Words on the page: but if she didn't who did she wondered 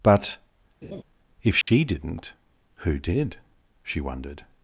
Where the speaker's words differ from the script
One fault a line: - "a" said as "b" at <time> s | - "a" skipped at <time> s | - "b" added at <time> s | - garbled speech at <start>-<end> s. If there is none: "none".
none